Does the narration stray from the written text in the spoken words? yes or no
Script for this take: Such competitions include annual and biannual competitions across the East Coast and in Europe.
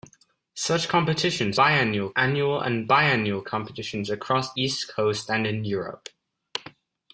yes